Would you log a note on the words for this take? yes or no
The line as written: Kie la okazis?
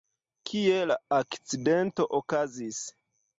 yes